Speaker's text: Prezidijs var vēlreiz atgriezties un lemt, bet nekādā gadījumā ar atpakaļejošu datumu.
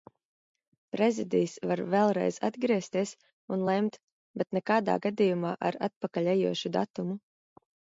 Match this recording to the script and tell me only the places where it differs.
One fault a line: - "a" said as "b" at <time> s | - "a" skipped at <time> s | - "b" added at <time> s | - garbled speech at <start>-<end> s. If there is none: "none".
none